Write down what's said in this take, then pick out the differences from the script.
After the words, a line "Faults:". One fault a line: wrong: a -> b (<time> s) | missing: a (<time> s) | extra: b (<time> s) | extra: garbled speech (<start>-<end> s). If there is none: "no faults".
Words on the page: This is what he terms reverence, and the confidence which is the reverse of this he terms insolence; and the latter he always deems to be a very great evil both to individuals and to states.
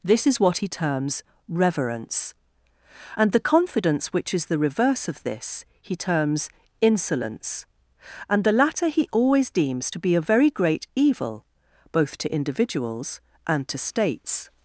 This is what he terms reverence, and the confidence which is the reverse of this he terms insolence; and the latter he always deems to be a very great evil both to individuals and to states.
Faults:
no faults